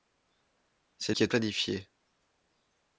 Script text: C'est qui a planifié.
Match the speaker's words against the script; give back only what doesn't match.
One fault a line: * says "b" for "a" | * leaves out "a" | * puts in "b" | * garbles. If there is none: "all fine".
all fine